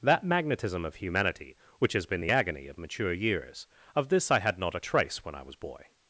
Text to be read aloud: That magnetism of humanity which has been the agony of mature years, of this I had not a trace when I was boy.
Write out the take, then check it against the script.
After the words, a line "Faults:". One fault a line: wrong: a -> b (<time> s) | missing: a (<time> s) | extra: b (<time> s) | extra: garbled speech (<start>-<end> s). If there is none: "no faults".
That magnetism of humanity which has been the agony of mature years, of this I had not a trace when I was boy.
Faults:
no faults